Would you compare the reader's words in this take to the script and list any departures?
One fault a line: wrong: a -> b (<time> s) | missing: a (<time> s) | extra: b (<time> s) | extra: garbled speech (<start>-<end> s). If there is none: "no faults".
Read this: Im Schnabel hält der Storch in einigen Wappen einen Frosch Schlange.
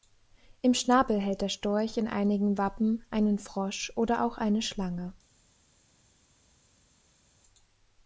extra: oder auch eine (4.0 s)